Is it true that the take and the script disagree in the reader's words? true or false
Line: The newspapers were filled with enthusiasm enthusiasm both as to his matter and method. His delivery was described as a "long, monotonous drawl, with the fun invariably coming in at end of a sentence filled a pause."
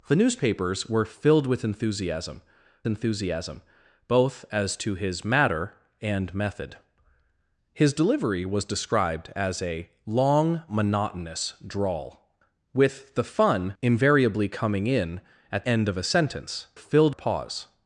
false